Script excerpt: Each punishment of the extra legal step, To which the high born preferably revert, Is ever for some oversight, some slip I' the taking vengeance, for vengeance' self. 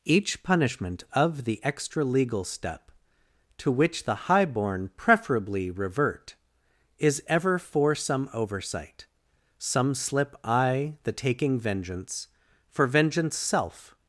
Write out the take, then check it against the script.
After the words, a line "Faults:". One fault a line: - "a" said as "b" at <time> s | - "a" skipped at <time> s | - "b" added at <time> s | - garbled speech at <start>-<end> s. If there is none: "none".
Each punishment of the extra legal step, To which the high born preferably revert, Is ever for some oversight, some slip I' the taking vengeance, for vengeance' self.
Faults:
none